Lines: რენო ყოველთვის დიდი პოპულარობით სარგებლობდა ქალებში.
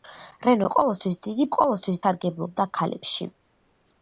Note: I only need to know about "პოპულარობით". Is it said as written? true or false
false